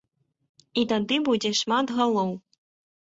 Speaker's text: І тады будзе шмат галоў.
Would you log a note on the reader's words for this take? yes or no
no